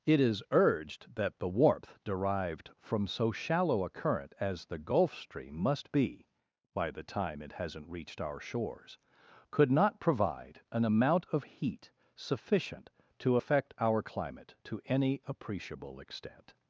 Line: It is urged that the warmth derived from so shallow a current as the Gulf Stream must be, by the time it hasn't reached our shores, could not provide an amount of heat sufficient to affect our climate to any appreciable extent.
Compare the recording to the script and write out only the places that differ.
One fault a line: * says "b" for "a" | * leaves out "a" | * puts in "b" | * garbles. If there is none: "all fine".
all fine